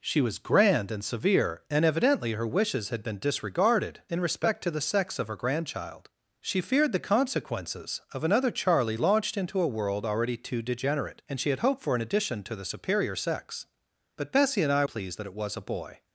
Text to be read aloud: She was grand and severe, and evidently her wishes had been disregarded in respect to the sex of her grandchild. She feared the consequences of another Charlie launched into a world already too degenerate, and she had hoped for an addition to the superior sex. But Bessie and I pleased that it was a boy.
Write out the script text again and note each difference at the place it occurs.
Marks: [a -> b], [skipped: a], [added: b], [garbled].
She was grand and severe, and evidently her wishes had been disregarded in respect to the sex of her grandchild. She feared the consequences of another Charlie launched into a world already too degenerate, and she had hoped for an addition to the superior sex. But Bessie and I pleased that it was a boy.